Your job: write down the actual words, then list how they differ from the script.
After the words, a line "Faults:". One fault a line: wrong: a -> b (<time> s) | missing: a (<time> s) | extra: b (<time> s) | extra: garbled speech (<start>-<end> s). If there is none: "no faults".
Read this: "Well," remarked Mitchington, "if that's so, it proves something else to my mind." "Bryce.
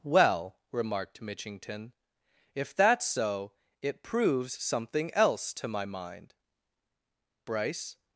"Well," remarked Mitchington, "if that's so, it proves something else to my mind." "Bryce.
Faults:
no faults